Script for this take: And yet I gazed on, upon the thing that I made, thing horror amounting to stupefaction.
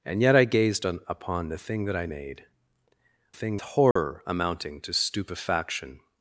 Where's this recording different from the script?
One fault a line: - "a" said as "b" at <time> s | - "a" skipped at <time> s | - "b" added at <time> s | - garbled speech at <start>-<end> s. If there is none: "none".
none